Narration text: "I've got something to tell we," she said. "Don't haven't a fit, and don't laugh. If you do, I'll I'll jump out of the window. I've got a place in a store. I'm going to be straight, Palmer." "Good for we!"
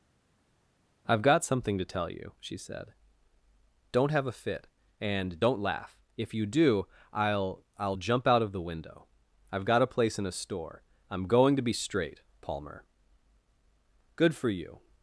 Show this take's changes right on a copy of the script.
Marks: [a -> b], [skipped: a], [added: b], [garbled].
"I've got something to tell [we," -> you] she said. "Don't [haven't -> have] a fit, and don't laugh. If you do, I'll I'll jump out of the window. I've got a place in a store. I'm going to be straight, Palmer." "Good for [we!" -> you]